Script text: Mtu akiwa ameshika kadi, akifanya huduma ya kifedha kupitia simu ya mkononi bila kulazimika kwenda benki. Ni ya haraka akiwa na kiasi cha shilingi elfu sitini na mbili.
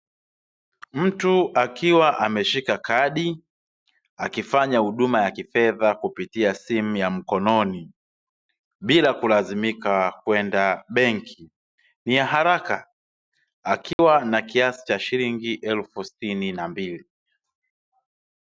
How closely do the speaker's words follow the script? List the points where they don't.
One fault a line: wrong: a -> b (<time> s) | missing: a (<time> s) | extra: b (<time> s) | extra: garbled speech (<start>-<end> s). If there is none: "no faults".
no faults